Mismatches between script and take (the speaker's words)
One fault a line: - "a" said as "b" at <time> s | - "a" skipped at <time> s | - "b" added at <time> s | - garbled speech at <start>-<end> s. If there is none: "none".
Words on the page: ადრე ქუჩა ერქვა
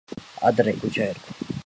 none